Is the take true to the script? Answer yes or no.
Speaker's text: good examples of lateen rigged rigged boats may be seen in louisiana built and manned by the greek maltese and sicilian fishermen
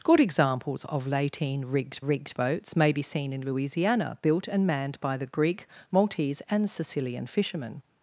yes